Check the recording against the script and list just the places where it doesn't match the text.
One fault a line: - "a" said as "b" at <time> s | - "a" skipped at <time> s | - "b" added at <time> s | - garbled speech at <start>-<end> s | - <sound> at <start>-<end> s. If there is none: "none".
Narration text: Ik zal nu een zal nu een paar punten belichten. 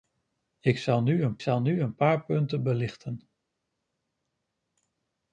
none